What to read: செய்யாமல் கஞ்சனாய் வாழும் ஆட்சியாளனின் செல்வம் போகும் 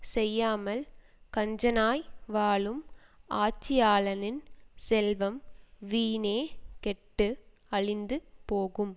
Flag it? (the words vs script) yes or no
yes